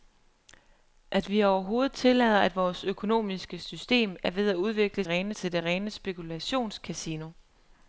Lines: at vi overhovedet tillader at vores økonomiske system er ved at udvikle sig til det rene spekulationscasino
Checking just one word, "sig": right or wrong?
wrong